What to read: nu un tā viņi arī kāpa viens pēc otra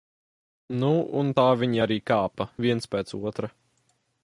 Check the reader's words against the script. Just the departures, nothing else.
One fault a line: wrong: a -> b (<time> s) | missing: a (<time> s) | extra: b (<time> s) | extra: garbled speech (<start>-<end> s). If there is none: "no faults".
no faults